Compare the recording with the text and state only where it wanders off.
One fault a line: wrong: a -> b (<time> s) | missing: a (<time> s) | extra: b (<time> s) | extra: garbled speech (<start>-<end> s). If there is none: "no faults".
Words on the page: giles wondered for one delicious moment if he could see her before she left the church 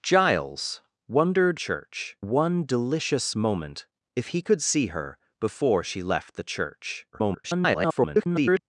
wrong: for -> church (1.5 s)
extra: garbled speech (7.1-8.6 s)